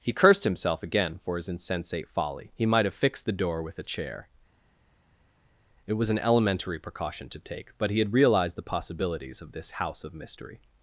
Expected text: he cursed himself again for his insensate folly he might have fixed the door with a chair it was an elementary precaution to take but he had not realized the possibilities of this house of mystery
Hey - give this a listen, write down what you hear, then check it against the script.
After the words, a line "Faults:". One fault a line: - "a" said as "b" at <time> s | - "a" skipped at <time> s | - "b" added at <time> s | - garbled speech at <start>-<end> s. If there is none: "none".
he cursed himself again for his insensate folly he might have fixed the door with a chair it was an elementary precaution to take but he had realized the possibilities of this house of mystery
Faults:
- "not" skipped at 8.1 s